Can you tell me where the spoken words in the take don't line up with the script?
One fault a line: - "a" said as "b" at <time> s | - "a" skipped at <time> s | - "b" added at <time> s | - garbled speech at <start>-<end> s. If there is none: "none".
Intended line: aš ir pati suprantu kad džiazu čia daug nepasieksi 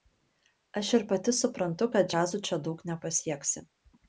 none